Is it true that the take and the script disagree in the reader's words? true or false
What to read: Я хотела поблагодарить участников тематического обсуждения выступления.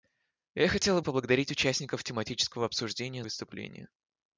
false